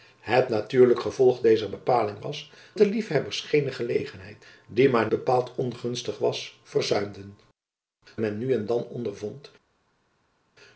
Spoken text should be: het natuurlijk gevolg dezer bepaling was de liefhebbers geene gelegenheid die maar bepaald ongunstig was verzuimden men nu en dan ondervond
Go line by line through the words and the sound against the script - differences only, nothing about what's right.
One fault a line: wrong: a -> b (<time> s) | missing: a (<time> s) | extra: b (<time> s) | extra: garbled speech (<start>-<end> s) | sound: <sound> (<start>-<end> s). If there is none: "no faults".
no faults